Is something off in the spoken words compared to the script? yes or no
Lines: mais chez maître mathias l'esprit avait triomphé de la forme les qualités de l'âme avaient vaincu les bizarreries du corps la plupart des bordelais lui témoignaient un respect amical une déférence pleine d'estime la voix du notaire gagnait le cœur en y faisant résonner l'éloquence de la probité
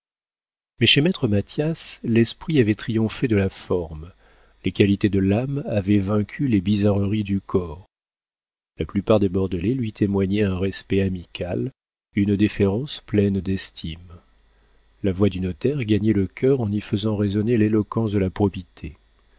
no